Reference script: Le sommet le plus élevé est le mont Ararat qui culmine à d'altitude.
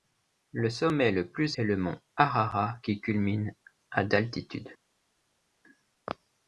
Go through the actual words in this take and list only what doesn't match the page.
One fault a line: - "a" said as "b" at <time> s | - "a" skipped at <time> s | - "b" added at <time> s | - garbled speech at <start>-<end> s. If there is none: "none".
- "élevé" skipped at 1.6 s